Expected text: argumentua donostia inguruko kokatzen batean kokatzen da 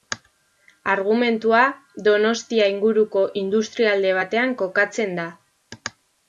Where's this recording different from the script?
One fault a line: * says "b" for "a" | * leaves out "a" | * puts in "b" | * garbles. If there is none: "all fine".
* says "industrialde" for "kokatzen"